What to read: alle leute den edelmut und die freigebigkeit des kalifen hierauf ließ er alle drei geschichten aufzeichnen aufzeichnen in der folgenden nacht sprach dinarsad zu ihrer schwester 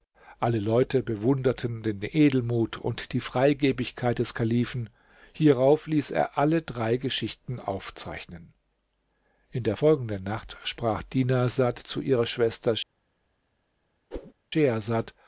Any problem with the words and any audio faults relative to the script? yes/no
yes